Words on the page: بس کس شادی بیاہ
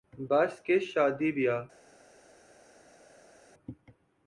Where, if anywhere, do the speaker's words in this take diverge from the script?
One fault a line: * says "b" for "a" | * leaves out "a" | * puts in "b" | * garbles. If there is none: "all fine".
all fine